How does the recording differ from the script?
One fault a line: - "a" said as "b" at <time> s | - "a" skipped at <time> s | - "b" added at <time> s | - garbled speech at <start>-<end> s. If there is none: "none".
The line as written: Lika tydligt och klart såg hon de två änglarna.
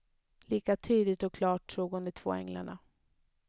none